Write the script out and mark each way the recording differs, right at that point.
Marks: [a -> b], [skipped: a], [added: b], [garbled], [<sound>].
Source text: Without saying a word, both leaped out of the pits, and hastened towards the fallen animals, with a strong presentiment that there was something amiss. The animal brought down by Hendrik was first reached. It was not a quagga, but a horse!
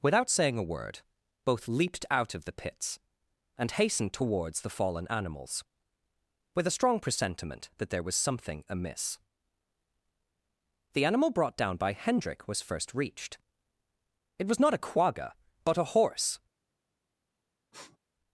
Without saying a word, both leaped out of the pits, and hastened towards the fallen animals, with a strong presentiment that there was something amiss. The animal brought down by Hendrik was first reached. It was not a quagga, but a horse! [sniff]